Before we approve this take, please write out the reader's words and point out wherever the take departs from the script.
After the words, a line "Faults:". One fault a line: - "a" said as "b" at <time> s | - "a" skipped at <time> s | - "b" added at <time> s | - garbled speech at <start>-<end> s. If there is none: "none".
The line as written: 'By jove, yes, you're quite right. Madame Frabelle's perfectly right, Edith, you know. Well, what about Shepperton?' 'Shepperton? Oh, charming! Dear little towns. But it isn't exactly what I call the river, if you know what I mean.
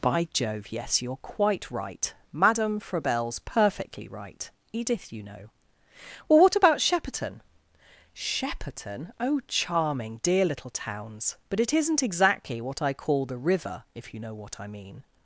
'By jove, yes, you're quite right. Madame Frabelle's perfectly right, Edith, you know. Well, what about Shepperton?' 'Shepperton? Oh, charming! Dear little towns. But it isn't exactly what I call the river, if you know what I mean.
Faults:
none